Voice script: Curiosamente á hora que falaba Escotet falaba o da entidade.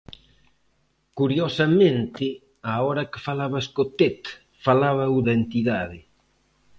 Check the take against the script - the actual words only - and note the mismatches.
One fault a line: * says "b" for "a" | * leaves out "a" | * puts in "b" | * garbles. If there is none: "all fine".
all fine